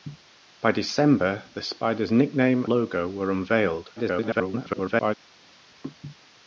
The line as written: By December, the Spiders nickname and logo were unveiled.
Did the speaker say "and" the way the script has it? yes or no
no